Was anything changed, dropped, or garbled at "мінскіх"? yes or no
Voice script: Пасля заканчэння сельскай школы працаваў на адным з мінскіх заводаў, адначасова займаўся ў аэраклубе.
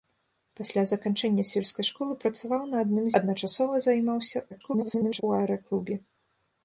yes